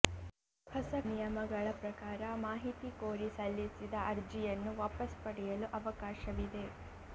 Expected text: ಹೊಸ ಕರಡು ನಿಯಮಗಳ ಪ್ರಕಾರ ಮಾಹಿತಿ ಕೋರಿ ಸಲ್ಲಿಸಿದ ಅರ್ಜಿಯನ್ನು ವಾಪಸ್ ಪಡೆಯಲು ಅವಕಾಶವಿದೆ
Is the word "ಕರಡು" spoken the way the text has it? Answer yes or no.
no